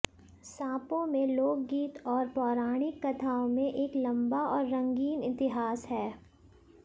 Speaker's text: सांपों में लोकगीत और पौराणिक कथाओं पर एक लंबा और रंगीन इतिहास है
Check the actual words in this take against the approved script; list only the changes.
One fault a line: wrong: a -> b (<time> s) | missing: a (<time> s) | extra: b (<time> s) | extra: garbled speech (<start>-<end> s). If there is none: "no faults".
wrong: पर -> में (3.5 s)